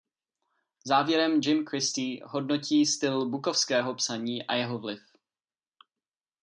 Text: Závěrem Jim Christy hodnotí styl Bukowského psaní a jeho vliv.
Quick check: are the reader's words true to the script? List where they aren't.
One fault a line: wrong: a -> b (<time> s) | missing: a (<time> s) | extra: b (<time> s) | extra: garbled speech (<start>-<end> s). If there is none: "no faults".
no faults